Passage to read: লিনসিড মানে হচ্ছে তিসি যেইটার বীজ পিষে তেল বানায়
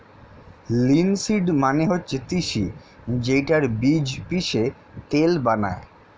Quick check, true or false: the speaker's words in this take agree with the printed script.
true